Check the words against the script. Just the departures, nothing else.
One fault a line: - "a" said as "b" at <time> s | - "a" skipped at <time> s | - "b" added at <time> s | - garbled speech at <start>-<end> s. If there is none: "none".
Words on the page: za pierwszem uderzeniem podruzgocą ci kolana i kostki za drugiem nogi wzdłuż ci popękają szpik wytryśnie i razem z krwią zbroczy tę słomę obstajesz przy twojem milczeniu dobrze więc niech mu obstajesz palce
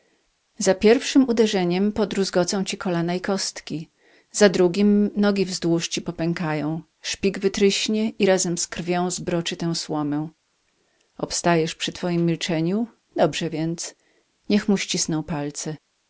- "obstajesz" said as "ścisną" at 14.8 s